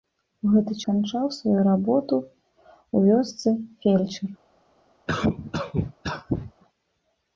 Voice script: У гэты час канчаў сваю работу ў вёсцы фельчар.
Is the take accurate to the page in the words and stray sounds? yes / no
no